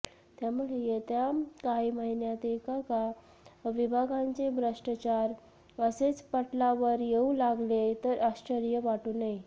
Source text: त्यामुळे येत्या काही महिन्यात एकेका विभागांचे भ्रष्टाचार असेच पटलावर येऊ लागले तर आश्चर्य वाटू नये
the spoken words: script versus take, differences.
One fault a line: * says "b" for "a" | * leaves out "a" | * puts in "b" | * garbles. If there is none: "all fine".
all fine